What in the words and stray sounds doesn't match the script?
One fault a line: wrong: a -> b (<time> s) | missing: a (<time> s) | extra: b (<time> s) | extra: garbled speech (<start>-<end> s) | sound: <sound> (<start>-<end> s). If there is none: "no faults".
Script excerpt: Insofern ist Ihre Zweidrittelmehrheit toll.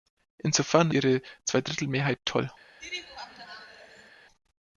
missing: ist (0.9 s)
sound: laugh (2.8-4.1 s)